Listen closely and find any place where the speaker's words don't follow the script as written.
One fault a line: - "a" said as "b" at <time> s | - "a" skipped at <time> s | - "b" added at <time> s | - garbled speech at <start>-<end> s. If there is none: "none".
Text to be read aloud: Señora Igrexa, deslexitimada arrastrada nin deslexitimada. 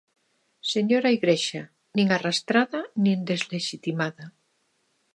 - "deslexitimada" said as "nin" at 1.9 s